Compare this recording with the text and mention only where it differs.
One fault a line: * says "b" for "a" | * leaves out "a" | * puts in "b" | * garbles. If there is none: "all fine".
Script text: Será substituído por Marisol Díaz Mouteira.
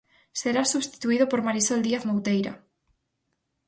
all fine